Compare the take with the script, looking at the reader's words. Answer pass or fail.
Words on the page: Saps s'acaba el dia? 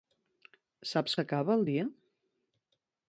pass